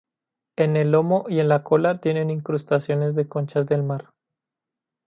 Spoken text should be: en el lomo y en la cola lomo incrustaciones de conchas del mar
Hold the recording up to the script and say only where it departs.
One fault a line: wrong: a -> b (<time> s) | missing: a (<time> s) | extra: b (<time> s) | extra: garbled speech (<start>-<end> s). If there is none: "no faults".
wrong: lomo -> tienen (2.0 s)